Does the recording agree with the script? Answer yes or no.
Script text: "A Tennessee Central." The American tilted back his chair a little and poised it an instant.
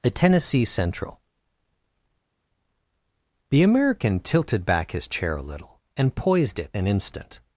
yes